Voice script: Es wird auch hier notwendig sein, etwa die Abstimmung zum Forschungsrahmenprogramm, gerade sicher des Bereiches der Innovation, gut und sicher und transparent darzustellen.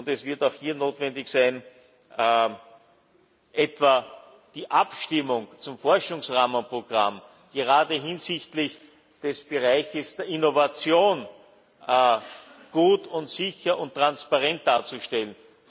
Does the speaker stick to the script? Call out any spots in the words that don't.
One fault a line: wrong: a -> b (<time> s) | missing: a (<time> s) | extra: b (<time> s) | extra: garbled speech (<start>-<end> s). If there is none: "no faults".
wrong: sicher -> hinsichtlich (7.9 s)